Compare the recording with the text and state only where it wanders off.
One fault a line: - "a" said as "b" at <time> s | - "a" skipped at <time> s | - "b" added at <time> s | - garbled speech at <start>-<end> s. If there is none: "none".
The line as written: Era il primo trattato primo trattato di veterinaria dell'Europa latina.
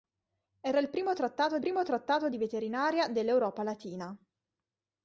none